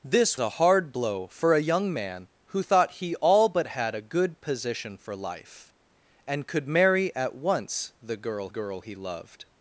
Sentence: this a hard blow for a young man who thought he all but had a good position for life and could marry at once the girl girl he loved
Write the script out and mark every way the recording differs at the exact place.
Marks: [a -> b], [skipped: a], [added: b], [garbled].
this a hard blow for a young man who thought he all but had a good position for life and could marry at once the girl girl he loved